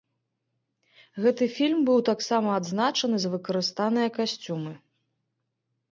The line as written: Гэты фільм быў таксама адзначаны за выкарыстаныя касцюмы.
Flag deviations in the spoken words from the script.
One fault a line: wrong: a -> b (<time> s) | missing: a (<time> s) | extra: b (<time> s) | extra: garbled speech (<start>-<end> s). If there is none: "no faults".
no faults